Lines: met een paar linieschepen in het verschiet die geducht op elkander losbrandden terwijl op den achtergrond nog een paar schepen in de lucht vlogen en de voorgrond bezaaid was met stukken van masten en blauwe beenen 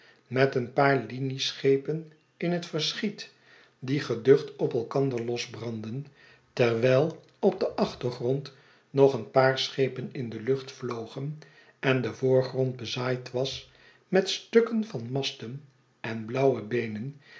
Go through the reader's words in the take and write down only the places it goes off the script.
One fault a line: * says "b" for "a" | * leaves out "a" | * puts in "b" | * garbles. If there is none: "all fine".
all fine